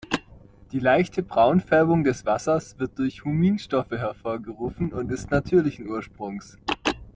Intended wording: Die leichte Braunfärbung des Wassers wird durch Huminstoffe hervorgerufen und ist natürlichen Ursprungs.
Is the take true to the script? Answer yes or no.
yes